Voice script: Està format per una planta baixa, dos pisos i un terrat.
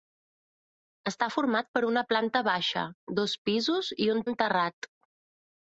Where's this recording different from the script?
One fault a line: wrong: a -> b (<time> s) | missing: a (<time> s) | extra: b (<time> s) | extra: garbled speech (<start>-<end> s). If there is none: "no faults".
extra: un (4.3 s)